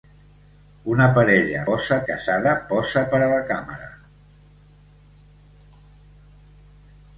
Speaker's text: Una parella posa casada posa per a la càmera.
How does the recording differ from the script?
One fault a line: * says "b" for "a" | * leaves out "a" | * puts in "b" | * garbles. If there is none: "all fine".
all fine